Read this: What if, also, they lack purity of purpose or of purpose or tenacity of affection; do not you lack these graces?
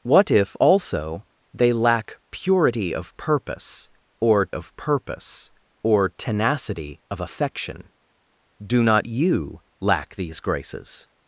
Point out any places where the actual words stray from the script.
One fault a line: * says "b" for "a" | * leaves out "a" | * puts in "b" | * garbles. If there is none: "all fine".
all fine